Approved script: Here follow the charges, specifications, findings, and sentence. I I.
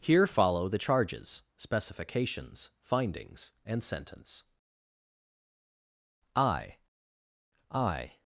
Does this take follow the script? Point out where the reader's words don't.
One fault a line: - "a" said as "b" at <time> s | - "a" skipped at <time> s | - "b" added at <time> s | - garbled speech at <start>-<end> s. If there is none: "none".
none